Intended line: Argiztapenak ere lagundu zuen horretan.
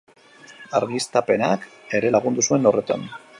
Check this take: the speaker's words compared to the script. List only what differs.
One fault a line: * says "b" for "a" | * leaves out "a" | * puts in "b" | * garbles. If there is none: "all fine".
all fine